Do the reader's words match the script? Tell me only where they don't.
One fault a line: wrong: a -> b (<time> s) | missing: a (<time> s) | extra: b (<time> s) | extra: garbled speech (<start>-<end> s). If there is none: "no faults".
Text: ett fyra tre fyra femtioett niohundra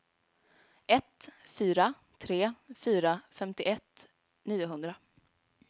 no faults